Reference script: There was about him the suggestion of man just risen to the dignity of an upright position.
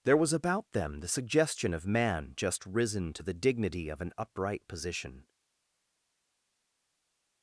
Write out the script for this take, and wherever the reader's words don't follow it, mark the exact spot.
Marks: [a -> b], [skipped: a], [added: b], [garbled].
There was about [him -> them] the suggestion of man just risen to the dignity of an upright position.